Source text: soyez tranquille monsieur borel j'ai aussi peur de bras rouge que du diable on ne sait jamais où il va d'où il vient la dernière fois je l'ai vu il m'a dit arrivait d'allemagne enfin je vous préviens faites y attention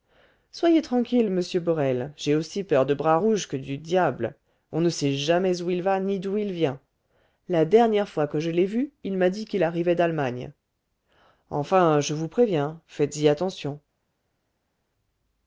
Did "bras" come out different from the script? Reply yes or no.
no